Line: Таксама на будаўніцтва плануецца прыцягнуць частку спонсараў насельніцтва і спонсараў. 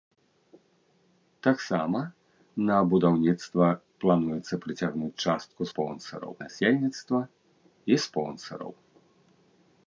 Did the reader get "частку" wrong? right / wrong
right